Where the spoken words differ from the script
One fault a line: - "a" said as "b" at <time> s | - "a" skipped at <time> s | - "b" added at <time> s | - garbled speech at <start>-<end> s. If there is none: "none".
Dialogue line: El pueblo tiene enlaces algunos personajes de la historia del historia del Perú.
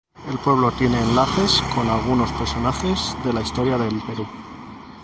- "con" added at 1.8 s
- "historia del" skipped at 4.0 s